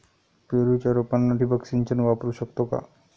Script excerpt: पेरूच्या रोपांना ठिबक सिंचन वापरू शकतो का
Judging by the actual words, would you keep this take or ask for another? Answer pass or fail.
pass